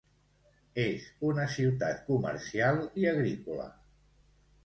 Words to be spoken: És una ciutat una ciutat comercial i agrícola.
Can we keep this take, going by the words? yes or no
no